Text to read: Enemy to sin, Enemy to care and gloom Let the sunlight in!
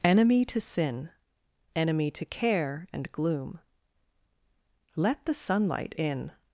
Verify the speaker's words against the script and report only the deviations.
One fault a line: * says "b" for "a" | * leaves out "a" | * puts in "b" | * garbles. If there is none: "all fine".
all fine